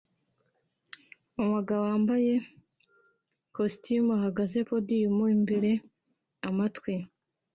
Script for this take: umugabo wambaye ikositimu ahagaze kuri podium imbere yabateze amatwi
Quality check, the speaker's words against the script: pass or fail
fail